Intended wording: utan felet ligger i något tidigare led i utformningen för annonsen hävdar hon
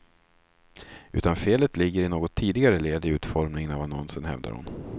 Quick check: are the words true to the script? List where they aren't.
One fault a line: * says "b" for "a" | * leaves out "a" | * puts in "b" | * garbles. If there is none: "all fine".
* says "av" for "för"